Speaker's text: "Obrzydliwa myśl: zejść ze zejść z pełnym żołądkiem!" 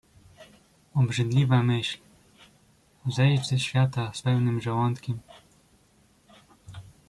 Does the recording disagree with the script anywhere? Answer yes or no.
yes